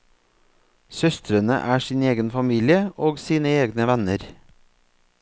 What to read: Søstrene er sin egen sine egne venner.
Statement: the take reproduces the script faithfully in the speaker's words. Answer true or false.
false